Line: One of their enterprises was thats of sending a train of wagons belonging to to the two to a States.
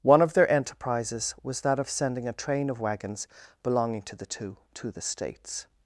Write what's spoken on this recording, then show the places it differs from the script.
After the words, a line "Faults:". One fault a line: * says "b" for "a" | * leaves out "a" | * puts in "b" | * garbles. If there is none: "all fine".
One of their enterprises was that of sending a train of wagons belonging to the two to the States.
Faults:
* says "that" for "thats"
* leaves out "to"
* says "the" for "a"